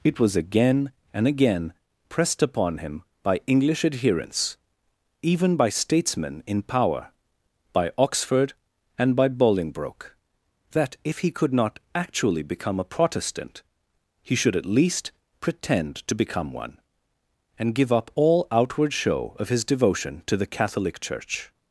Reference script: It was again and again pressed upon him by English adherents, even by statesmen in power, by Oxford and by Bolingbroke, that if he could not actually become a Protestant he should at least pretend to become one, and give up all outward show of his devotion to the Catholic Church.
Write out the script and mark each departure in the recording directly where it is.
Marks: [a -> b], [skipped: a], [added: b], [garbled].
It was again and again pressed upon him by English adherents, even by statesmen in power, by Oxford and by Bolingbroke, that if he could not actually become a Protestant he should at least pretend to become one, and give up all outward show of his devotion to the Catholic Church.